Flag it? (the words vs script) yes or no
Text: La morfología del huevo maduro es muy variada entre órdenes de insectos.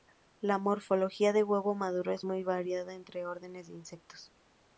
no